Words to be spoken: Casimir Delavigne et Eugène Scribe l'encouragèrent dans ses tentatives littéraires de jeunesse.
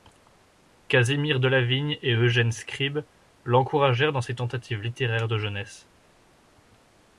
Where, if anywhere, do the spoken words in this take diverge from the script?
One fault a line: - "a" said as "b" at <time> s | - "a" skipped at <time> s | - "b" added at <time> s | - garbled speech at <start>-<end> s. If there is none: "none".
none